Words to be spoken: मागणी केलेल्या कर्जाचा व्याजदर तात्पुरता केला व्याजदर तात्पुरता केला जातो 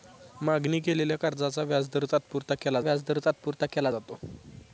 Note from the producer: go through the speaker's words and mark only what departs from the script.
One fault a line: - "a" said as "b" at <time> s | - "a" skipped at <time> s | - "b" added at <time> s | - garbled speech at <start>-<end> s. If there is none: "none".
none